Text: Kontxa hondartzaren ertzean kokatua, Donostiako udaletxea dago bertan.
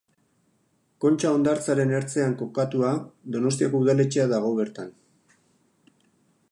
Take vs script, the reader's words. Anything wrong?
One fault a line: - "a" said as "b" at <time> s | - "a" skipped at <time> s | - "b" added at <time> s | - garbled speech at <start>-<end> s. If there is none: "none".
none